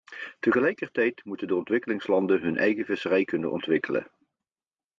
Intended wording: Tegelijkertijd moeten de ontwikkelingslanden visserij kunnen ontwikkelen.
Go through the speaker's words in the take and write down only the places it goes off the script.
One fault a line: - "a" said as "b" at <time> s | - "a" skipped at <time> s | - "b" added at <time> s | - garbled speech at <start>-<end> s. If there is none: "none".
- "hun eigen" added at 2.4 s